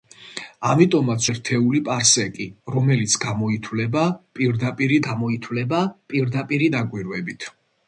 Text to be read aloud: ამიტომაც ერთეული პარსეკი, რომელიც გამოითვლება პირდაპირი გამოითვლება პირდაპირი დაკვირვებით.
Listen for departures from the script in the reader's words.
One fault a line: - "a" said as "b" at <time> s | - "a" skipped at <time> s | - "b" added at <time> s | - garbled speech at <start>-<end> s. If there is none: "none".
none